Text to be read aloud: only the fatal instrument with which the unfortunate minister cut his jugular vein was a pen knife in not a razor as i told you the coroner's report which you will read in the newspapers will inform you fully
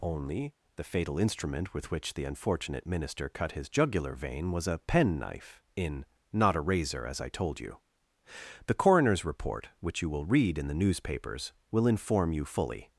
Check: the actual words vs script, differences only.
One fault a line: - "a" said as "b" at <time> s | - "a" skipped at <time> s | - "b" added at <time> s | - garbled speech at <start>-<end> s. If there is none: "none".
none